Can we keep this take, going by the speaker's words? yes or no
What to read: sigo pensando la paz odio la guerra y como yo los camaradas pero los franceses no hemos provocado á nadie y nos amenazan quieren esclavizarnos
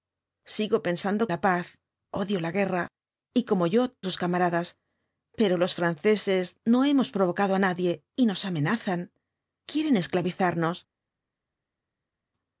yes